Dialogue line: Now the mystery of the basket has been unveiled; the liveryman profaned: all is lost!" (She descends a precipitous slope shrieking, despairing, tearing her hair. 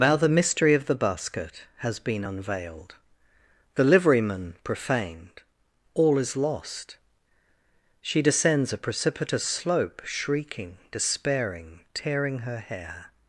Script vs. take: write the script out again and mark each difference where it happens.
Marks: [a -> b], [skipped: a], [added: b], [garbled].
Now the mystery of the basket has been unveiled; the liveryman profaned: all is lost!" (She descends a precipitous slope shrieking, despairing, tearing her hair.